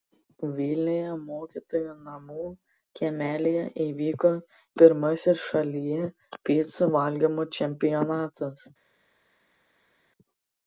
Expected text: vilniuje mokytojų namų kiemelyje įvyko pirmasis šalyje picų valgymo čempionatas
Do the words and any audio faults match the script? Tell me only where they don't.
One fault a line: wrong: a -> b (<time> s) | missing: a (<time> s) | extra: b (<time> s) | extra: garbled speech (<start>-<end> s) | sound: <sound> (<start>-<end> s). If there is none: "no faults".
no faults